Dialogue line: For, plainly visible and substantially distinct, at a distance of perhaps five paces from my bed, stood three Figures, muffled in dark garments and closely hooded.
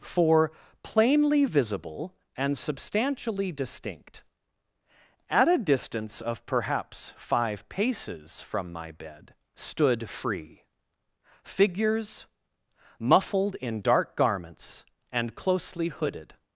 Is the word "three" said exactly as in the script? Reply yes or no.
no